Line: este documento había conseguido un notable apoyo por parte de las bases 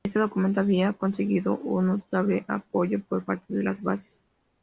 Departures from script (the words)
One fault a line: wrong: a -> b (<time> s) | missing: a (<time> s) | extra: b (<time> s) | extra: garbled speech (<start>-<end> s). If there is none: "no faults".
no faults